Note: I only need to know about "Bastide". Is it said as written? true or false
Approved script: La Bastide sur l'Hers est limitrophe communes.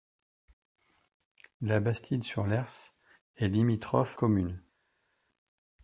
true